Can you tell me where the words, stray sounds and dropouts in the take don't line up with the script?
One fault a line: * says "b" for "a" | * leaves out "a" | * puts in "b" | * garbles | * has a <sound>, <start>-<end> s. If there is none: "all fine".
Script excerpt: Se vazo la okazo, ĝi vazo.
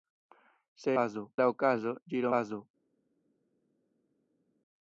all fine